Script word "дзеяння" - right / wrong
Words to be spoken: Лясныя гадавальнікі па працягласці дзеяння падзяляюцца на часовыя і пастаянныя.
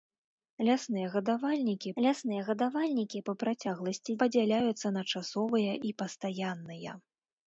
wrong